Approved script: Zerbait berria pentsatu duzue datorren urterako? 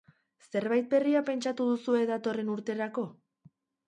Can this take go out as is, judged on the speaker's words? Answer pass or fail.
pass